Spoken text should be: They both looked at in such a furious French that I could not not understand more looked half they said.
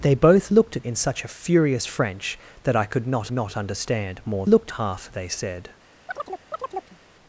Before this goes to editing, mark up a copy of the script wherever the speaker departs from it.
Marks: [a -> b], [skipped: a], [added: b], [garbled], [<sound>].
They both looked at in such a furious French that I could not not understand more looked half they said. [chirp]